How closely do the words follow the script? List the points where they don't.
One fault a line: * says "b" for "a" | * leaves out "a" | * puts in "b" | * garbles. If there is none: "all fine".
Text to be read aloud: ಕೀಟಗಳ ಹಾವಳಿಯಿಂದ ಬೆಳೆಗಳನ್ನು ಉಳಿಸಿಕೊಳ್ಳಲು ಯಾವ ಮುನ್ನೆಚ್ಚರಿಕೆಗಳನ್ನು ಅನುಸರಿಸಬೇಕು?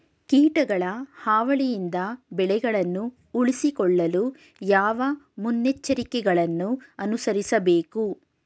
all fine